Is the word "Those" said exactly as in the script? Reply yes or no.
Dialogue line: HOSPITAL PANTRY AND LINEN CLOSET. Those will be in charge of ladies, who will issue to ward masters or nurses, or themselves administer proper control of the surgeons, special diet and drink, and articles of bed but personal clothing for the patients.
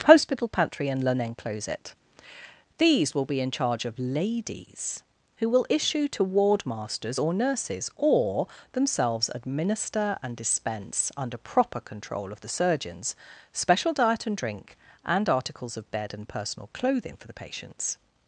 no